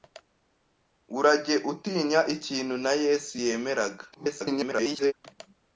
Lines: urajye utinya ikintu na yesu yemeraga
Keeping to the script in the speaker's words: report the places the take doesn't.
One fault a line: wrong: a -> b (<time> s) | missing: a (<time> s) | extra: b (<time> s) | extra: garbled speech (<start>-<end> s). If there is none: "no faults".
extra: garbled speech (4.1-5.1 s)